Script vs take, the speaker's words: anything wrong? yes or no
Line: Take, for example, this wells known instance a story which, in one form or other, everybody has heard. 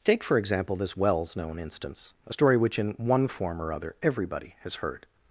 no